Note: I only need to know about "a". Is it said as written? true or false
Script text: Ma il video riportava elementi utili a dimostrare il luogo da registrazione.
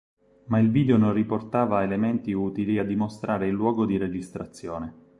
true